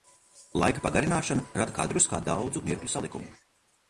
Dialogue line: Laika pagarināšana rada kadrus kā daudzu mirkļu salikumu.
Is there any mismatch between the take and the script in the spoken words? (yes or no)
no